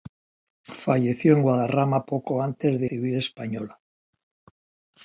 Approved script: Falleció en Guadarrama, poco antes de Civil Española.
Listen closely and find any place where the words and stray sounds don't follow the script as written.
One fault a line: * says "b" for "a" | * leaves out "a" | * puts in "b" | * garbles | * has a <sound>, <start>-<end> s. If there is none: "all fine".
all fine